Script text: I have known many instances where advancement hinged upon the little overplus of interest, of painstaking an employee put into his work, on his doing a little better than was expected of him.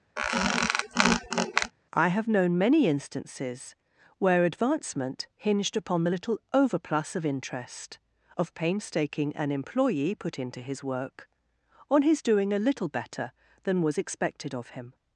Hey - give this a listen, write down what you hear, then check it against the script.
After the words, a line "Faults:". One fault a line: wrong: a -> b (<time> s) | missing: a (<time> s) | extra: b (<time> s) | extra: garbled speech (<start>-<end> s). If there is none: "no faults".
I have known many instances where advancement hinged upon the little overplus of interest, of painstaking an employee put into his work, on his doing a little better than was expected of him.
Faults:
no faults